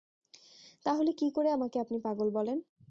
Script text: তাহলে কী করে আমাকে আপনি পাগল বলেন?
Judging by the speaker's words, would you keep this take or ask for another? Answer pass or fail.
pass